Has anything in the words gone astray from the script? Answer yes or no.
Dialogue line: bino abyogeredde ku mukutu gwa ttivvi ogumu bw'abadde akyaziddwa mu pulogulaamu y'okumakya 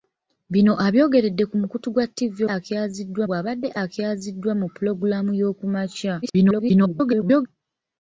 yes